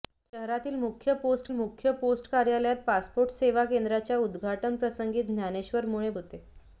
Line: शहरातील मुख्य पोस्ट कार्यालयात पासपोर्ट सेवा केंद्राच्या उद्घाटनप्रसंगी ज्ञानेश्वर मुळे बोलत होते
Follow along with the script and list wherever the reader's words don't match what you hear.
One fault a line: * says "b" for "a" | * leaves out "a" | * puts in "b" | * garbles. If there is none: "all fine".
* puts in "मुख्य पोस्ट"
* leaves out "बोलत"